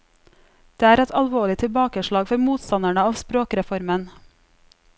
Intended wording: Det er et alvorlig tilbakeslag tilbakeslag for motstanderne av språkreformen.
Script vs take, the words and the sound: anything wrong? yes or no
yes